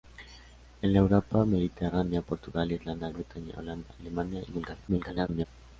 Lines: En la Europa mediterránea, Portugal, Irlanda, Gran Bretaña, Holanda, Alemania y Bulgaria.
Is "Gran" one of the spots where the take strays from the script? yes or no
yes